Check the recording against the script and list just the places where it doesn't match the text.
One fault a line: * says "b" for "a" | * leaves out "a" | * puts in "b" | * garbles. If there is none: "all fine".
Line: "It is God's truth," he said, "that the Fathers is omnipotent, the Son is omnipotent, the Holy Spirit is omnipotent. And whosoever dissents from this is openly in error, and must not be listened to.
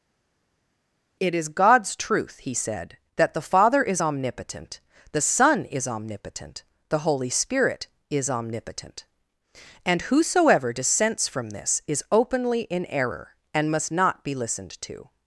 * says "Father" for "Fathers"